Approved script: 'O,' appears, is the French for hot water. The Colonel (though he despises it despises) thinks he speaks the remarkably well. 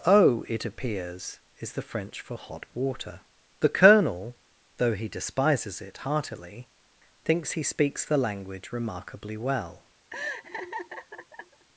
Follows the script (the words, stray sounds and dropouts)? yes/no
no